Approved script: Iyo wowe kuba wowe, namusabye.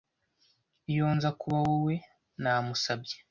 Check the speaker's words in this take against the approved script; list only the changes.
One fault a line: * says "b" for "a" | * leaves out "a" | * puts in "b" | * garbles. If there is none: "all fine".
* says "nza" for "wowe"